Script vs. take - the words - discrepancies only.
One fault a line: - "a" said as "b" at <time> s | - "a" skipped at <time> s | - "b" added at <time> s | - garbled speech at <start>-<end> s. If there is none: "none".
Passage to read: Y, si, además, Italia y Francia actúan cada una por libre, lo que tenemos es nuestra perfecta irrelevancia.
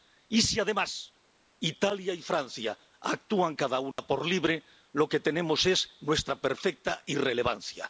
none